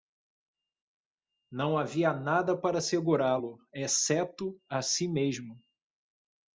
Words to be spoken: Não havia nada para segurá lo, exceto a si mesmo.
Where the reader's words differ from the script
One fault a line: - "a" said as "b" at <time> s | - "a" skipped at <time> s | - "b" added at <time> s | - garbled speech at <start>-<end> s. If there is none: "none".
none